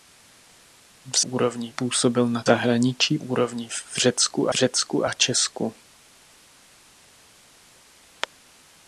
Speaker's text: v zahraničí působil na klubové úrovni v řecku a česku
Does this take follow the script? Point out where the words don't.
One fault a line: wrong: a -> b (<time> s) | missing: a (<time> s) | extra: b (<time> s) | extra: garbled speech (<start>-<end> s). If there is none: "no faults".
wrong: zahraničí -> úrovni (1.2 s)
wrong: klubové -> zahraničí (2.4 s)
extra: řecku (4.5 s)